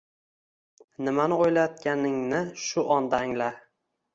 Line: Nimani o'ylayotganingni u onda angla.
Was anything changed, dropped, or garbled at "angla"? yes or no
no